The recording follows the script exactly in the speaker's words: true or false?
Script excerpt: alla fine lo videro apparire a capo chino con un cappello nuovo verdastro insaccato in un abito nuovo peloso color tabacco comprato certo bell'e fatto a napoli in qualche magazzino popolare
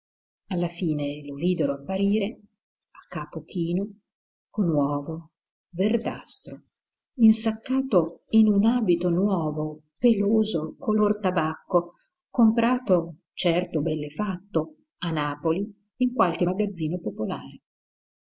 false